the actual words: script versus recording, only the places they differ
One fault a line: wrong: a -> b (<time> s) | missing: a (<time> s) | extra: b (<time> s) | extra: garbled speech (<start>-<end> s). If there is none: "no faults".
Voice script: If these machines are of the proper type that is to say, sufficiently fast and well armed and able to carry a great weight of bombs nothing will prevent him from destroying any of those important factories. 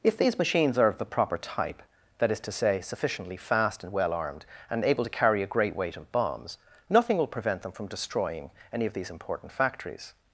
wrong: him -> them (7.6 s)
wrong: those -> these (8.9 s)